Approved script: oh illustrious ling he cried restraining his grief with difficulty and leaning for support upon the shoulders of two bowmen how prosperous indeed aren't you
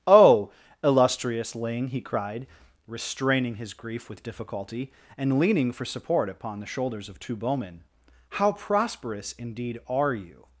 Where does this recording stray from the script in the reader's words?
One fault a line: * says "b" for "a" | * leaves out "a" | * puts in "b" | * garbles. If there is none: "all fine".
* says "are" for "aren't"